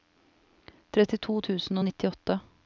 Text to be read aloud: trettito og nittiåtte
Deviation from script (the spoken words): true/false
true